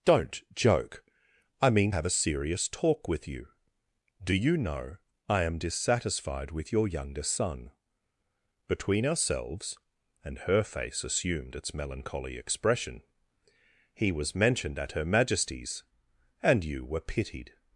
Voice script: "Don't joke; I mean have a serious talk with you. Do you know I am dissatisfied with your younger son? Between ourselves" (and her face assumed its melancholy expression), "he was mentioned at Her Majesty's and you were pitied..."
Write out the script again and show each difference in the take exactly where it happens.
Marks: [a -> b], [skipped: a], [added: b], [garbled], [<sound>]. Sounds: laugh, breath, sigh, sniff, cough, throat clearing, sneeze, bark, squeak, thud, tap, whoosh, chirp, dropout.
"Don't joke; I mean have a serious talk with you. Do you know I am dissatisfied with your younger son? Between ourselves" (and her face assumed its melancholy expression), "he was mentioned at Her Majesty's and you were pitied..."